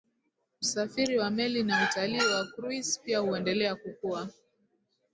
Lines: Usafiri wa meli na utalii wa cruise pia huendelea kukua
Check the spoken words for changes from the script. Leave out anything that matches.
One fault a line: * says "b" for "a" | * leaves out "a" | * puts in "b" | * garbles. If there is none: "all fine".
all fine